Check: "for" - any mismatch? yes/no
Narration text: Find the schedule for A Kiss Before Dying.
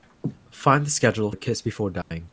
yes